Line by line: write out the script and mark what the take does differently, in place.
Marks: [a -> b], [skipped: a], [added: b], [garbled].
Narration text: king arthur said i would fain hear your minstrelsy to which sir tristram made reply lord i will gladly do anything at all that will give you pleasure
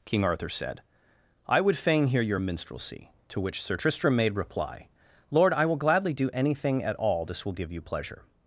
king arthur said i would fain hear your minstrelsy to which sir tristram made reply lord i will gladly do anything at all [that -> this] will give you pleasure